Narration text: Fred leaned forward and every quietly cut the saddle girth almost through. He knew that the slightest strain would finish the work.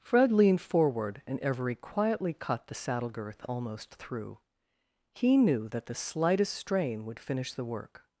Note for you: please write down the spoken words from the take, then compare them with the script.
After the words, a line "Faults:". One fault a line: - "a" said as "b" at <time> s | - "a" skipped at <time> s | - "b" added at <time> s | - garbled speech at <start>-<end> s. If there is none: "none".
Fred leaned forward and every quietly cut the saddle girth almost through. He knew that the slightest strain would finish the work.
Faults:
none